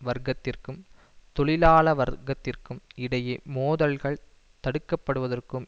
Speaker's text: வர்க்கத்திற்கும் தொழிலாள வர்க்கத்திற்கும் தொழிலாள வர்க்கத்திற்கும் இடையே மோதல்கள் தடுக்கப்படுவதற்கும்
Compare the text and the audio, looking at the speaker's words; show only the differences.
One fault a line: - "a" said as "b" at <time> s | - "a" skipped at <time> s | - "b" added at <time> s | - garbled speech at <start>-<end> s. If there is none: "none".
- "தொழிலாள வர்க்கத்திற்கும்" skipped at 2.8 s